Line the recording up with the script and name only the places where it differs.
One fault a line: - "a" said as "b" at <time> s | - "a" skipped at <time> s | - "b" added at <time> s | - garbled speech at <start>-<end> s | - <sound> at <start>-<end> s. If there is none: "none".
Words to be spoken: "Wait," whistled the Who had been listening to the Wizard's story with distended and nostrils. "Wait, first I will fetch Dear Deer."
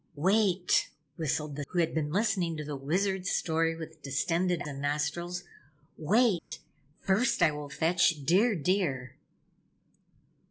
- dropout at 6.4-6.5 s